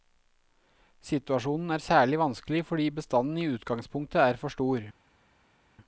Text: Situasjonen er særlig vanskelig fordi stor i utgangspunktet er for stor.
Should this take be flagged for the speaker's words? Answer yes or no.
yes